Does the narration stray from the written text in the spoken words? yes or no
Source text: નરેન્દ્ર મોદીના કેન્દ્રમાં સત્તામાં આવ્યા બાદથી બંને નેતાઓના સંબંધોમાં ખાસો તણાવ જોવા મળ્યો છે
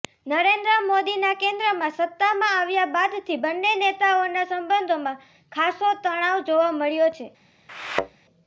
no